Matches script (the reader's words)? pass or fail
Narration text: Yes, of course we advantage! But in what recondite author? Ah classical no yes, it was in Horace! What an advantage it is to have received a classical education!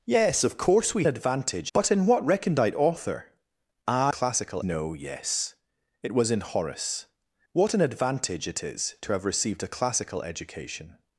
pass